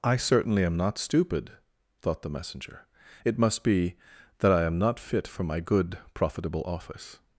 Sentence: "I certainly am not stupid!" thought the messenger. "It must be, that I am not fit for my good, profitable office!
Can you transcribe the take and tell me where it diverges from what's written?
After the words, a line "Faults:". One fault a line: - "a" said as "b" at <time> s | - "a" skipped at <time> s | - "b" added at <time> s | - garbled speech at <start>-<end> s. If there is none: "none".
"I certainly am not stupid!" thought the messenger. "It must be, that I am not fit for my good, profitable office!
Faults:
none